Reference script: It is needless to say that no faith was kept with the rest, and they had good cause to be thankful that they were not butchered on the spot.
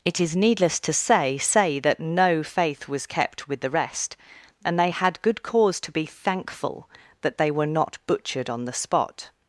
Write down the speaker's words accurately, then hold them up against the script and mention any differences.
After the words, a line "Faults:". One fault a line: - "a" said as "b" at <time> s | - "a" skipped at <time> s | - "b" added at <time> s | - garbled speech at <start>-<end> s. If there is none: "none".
It is needless to say say that no faith was kept with the rest, and they had good cause to be thankful that they were not butchered on the spot.
Faults:
- "say" added at 1.4 s